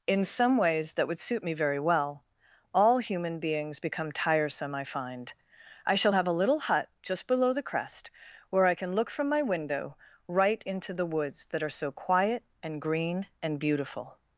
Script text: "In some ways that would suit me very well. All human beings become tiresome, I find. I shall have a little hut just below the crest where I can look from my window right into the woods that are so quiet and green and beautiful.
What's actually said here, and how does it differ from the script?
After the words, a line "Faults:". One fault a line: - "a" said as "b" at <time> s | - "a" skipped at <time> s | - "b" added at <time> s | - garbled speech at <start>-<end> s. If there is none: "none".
"In some ways that would suit me very well. All human beings become tiresome, I find. I shall have a little hut just below the crest where I can look from my window right into the woods that are so quiet and green and beautiful.
Faults:
none